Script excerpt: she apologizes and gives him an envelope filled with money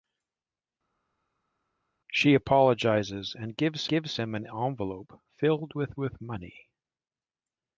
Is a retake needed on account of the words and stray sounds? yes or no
yes